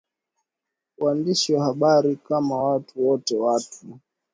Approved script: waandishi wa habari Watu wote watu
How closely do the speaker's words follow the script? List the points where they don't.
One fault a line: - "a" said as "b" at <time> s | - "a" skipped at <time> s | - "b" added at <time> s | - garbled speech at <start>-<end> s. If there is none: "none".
- "Kama" added at 2.1 s